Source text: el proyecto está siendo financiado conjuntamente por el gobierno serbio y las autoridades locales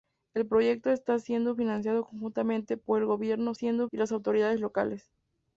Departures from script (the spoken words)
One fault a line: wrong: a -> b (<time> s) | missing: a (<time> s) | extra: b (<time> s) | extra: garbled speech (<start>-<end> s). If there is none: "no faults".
wrong: serbio -> siendo (3.5 s)